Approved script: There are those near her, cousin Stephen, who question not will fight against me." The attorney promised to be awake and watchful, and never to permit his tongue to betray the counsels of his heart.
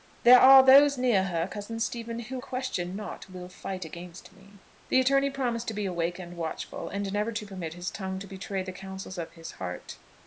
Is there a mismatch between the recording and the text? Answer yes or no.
no